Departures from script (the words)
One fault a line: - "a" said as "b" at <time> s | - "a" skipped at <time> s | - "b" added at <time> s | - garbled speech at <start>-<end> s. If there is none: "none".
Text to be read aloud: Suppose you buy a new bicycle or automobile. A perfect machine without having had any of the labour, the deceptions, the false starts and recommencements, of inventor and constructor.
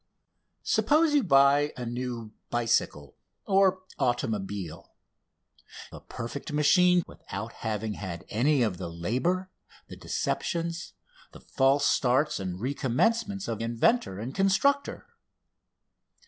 none